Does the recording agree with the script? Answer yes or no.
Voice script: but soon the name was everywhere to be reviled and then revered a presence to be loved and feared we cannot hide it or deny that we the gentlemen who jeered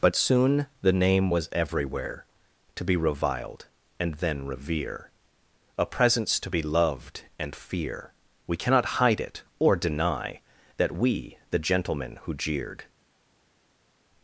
no